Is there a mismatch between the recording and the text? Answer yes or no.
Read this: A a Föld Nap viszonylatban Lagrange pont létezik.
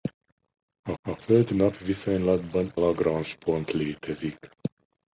no